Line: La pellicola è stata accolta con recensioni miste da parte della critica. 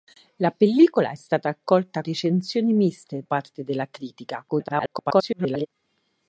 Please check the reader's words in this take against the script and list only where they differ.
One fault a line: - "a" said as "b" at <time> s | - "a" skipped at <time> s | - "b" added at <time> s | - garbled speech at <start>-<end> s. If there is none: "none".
- "con" skipped at 2.0 s
- "da" skipped at 3.2 s
- garbled speech at 4.5-5.7 s